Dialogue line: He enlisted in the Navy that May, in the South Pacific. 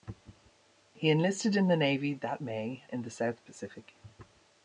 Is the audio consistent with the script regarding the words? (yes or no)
yes